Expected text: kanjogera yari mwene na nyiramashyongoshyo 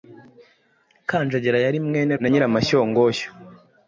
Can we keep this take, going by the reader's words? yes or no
yes